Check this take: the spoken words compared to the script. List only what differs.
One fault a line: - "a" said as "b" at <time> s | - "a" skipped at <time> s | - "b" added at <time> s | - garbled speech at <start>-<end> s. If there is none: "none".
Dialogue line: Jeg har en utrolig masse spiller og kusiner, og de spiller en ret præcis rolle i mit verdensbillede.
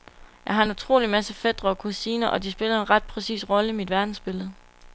- "spiller" said as "fætre" at 1.3 s